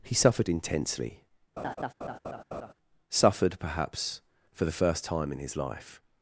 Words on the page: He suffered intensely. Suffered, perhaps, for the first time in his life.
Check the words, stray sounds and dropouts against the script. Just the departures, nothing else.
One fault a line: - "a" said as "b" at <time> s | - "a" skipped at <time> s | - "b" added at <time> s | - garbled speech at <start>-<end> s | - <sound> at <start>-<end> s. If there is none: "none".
- laugh at 1.6-2.7 s